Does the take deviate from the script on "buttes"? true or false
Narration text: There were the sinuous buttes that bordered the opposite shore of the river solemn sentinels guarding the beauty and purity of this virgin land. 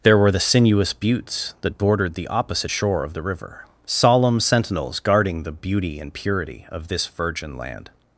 false